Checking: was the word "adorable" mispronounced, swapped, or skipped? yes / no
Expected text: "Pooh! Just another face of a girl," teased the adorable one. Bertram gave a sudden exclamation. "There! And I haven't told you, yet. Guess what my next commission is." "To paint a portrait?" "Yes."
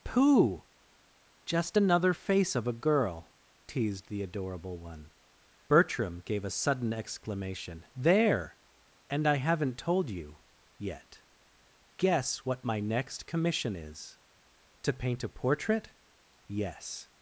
no